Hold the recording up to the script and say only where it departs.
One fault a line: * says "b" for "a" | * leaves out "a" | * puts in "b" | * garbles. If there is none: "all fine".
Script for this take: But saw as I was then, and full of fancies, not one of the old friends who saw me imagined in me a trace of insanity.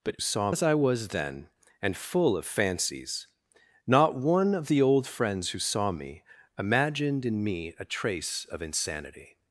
all fine